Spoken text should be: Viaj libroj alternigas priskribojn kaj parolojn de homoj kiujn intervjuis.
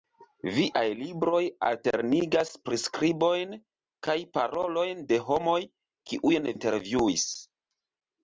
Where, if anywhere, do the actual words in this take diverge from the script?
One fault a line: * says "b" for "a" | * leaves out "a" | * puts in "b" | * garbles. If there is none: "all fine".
all fine